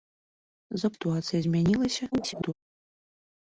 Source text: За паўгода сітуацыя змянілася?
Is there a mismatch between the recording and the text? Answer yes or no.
yes